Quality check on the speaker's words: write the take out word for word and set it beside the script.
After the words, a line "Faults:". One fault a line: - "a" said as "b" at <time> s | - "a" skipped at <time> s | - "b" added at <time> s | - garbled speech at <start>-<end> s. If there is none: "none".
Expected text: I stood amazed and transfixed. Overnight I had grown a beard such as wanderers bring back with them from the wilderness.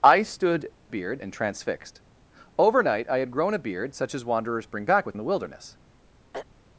I stood beard and transfixed. Overnight I had grown a beard such as wanderers bring back with the wilderness.
Faults:
- "amazed" said as "beard" at 0.9 s
- "them from" skipped at 5.1 s